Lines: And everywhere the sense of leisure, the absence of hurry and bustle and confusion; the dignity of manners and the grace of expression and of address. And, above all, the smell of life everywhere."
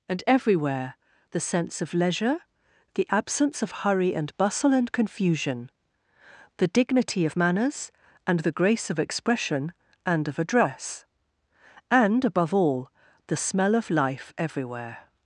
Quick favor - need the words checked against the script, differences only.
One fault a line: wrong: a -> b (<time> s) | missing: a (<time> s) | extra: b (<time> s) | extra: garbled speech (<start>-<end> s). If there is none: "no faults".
no faults